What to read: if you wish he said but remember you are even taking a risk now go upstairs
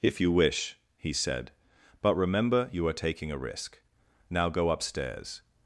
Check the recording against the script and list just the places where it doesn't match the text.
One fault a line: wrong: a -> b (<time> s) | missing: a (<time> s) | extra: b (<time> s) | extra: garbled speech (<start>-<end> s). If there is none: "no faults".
missing: even (2.9 s)